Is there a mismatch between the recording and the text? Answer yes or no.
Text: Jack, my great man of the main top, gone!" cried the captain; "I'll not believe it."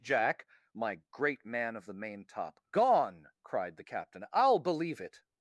yes